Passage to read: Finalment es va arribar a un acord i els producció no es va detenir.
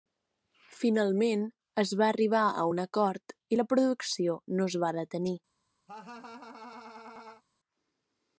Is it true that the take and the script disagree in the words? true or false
true